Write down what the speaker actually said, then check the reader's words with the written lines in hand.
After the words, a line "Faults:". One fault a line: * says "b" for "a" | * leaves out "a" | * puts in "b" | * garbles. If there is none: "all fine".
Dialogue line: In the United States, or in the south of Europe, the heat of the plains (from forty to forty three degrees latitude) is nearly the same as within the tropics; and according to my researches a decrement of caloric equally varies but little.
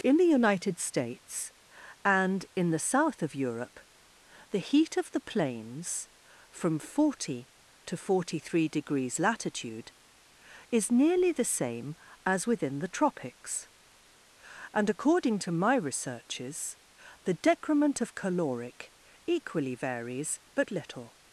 In the United States, and in the south of Europe, the heat of the plains (from forty to forty three degrees latitude) is nearly the same as within the tropics; and according to my researches the decrement of caloric equally varies but little.
Faults:
* says "and" for "or"
* says "the" for "a"